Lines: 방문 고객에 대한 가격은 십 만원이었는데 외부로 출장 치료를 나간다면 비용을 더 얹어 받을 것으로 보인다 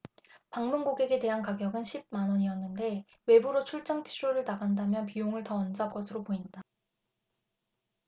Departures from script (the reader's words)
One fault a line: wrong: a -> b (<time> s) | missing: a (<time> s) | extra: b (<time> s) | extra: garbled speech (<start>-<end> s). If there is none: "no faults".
missing: 받을 (5.9 s)